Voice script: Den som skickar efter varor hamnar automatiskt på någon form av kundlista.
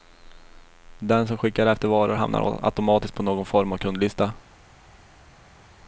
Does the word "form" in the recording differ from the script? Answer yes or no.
no